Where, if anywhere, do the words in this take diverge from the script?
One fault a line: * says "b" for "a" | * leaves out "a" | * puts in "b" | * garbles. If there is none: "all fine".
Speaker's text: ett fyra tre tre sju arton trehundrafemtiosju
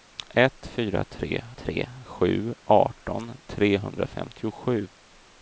all fine